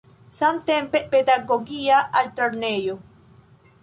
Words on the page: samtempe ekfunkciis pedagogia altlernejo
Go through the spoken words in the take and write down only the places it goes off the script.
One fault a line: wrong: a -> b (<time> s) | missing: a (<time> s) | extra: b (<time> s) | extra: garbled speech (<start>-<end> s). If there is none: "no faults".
missing: ekfunkciis (1.0 s)